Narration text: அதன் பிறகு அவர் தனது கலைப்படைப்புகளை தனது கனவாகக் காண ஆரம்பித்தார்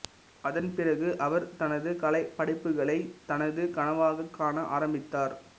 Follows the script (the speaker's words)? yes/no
yes